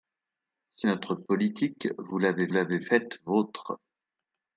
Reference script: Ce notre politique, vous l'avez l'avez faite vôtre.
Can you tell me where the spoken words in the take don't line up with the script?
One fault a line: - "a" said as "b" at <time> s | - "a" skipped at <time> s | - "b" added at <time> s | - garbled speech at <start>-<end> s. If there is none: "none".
none